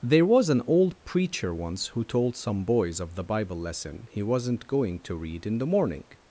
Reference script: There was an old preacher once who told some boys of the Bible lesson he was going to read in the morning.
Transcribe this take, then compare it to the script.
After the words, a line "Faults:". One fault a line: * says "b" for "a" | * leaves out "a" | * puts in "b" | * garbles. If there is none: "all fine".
There was an old preacher once who told some boys of the Bible lesson he wasn't going to read in the morning.
Faults:
* says "wasn't" for "was"